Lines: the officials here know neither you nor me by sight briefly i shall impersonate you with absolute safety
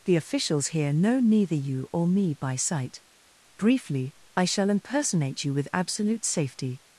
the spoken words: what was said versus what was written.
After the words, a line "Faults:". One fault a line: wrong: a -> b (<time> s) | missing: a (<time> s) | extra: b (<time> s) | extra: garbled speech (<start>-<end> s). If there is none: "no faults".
the officials here know neither you or me by sight briefly i shall impersonate you with absolute safety
Faults:
wrong: nor -> or (1.9 s)